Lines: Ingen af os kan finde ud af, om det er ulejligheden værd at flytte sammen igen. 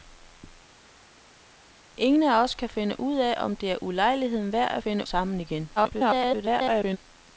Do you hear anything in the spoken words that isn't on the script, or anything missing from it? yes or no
yes